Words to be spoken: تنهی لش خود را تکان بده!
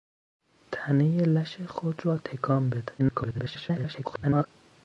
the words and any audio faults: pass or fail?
fail